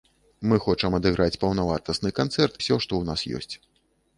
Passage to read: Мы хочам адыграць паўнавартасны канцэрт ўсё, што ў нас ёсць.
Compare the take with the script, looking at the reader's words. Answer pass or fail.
pass